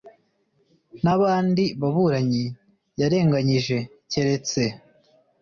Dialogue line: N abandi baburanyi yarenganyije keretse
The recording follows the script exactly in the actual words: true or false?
true